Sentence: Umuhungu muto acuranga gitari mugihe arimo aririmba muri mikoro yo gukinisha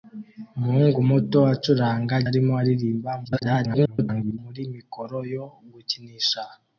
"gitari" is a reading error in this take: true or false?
true